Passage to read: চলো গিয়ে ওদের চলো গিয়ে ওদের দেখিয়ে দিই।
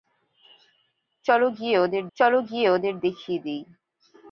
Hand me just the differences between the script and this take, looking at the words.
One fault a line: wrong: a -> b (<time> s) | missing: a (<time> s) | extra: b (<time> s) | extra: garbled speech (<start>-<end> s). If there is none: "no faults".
no faults